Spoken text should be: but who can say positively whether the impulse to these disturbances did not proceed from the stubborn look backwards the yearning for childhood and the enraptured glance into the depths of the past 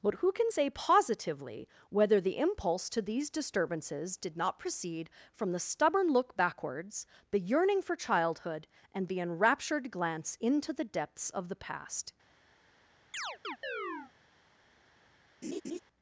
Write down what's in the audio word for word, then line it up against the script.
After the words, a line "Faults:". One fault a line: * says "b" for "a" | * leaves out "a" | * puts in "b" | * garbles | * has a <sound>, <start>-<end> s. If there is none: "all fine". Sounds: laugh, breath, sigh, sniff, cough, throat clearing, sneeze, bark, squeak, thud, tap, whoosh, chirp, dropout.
but who can say positively whether the impulse to these disturbances did not proceed from the stubborn look backwards the yearning for childhood and the enraptured glance into the depths of the past
Faults:
* has a chirp, 13.1-14.1 s
* has a laugh, 15.4-15.8 s